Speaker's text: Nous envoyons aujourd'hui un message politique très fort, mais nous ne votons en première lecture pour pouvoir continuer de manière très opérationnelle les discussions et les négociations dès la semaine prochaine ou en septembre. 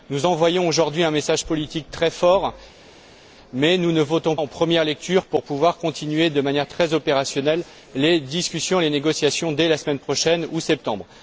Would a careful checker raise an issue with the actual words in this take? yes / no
no